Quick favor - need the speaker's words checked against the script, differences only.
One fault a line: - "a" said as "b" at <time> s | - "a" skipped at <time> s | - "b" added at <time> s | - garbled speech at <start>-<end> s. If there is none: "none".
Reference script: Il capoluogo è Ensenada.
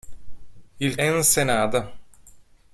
- "capoluogo è" skipped at 1.0 s